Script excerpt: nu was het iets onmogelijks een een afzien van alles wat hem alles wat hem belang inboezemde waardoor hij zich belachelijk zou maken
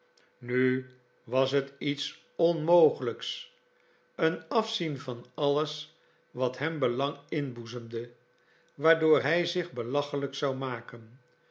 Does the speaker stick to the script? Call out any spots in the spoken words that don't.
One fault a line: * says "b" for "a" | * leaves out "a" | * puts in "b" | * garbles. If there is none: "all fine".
* leaves out "een"
* leaves out "alles wat hem"